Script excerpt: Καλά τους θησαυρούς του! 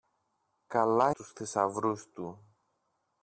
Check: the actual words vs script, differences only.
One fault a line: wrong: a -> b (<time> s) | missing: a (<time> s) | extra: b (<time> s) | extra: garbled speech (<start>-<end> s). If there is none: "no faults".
no faults